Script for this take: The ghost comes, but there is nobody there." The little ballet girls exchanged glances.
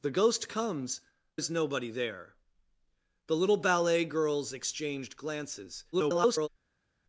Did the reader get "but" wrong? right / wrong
wrong